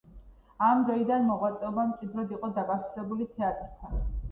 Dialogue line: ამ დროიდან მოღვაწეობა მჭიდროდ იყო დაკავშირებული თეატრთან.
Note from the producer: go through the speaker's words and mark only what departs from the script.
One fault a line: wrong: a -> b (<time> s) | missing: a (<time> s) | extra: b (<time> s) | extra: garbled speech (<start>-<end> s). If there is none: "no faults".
no faults